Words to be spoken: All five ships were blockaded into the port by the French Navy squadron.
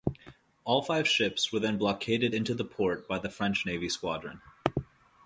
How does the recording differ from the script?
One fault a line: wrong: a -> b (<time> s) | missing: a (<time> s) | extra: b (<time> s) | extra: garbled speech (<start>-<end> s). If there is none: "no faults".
extra: then (1.6 s)